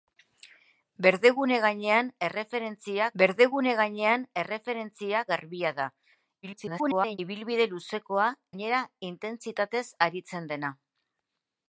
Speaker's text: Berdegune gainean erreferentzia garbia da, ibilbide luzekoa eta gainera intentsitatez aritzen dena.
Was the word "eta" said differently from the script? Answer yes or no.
yes